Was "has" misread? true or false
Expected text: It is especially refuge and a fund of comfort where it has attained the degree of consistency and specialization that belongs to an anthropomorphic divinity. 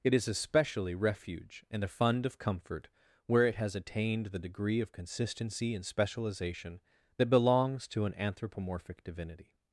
false